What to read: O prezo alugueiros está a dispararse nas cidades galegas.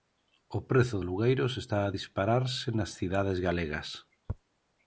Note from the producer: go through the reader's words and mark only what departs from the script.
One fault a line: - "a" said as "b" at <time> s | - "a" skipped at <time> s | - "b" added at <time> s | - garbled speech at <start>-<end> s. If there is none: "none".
none